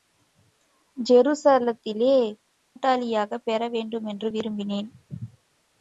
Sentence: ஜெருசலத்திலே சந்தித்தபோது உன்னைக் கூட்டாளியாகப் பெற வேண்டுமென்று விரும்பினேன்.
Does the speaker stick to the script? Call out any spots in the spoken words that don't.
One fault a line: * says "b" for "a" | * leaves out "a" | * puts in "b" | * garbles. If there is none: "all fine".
* leaves out "சந்தித்தபோது உன்னைக்"